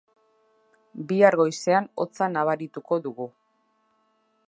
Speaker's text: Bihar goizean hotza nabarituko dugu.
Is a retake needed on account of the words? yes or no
no